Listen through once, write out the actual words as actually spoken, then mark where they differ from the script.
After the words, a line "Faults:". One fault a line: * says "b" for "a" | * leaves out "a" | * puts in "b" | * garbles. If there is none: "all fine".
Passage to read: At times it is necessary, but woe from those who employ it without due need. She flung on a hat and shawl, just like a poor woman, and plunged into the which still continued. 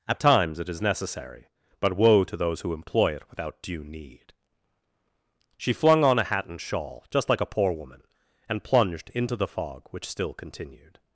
At times it is necessary, but woe to those who employ it without due need. She flung on a hat and shawl, just like a poor woman, and plunged into the fog, which still continued.
Faults:
* says "to" for "from"
* puts in "fog"